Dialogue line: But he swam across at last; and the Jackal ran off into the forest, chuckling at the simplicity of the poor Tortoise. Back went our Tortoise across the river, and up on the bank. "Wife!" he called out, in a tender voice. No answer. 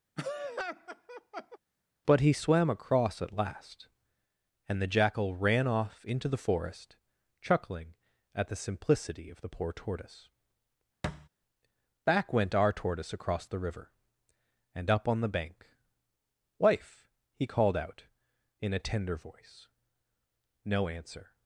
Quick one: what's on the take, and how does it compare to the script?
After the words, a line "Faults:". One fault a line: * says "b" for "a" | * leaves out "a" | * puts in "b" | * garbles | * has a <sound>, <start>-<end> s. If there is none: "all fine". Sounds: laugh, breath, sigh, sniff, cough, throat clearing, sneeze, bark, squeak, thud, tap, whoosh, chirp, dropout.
But he swam across at last; and the Jackal ran off into the forest, chuckling at the simplicity of the poor Tortoise. Back went our Tortoise across the river, and up on the bank. "Wife!" he called out, in a tender voice. No answer.
Faults:
* has a laugh, 0.2-1.6 s
* has a thud, 11.0-11.3 s